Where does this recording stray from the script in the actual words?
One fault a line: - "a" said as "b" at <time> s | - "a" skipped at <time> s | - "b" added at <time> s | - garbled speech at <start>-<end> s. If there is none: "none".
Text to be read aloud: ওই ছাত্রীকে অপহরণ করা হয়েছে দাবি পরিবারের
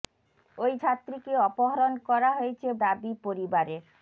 none